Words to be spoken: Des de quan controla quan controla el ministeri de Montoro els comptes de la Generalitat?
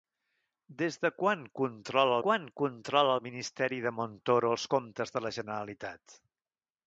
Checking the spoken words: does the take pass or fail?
pass